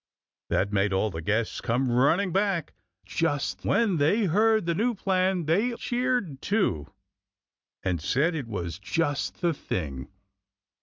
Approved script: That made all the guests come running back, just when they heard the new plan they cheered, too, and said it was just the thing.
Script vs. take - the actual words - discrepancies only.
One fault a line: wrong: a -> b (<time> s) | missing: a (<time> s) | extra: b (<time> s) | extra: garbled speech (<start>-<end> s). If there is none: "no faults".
no faults